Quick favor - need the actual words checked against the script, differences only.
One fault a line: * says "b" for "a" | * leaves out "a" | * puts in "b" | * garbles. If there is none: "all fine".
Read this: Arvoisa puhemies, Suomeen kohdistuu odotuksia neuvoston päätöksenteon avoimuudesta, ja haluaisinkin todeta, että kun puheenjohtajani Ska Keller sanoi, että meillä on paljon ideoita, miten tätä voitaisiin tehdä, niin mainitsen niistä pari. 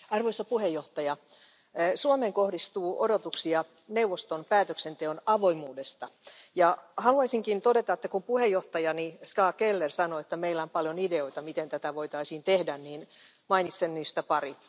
all fine